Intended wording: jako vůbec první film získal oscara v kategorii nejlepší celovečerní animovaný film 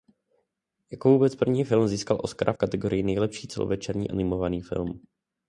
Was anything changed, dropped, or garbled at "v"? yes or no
yes